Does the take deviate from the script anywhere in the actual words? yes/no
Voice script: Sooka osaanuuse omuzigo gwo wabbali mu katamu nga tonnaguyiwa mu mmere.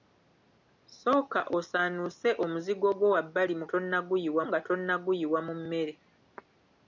yes